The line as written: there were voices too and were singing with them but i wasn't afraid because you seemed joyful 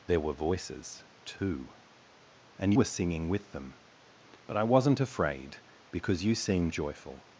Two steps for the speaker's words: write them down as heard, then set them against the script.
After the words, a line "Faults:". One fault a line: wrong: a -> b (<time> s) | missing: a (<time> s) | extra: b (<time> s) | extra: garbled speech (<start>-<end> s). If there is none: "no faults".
there were voices too and were singing with them but i wasn't afraid because you seemed joyful
Faults:
no faults